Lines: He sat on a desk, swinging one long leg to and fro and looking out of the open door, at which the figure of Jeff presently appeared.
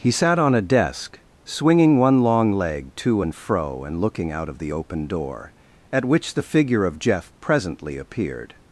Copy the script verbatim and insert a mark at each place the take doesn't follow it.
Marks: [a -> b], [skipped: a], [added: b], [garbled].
He sat on a desk, swinging one long leg to and fro and looking out of the open door, at which the figure of Jeff presently appeared.